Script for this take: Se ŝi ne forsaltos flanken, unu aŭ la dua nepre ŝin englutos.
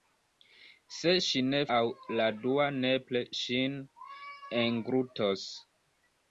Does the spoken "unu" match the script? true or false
false